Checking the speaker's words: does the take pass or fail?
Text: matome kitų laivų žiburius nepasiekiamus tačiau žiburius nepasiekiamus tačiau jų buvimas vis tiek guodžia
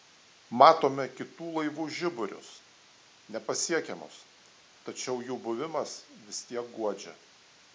fail